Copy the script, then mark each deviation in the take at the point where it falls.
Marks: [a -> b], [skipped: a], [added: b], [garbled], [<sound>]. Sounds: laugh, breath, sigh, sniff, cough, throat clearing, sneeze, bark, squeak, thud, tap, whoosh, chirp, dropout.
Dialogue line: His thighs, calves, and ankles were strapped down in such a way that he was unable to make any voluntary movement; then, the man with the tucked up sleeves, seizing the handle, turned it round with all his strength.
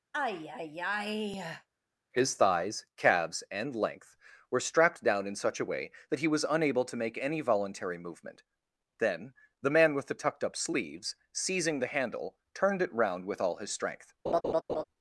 [sigh] His thighs, calves, and [ankles -> length] were strapped down in such a way that he was unable to make any voluntary movement; then, the man with the tucked up sleeves, seizing the handle, turned it round with all his strength. [laugh]